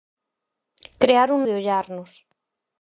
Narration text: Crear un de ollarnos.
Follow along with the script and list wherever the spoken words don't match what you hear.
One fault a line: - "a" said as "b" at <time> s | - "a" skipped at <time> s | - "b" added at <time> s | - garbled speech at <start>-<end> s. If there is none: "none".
none